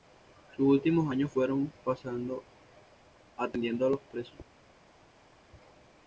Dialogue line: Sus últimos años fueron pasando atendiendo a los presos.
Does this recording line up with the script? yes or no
yes